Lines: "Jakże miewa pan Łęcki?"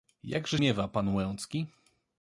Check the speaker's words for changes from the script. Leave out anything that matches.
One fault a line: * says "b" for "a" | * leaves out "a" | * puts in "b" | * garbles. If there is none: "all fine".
all fine